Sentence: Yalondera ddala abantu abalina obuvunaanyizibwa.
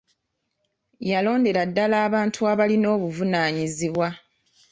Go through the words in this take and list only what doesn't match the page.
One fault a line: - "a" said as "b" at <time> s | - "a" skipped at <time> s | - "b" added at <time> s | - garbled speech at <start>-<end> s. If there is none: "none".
none